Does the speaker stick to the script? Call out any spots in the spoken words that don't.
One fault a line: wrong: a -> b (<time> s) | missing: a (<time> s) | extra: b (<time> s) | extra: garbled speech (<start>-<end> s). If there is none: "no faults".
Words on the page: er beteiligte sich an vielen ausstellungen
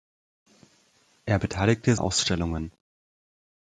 missing: sich an vielen (2.0 s)